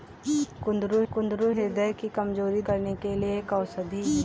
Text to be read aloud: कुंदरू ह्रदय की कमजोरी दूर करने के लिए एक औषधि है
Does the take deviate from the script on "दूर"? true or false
true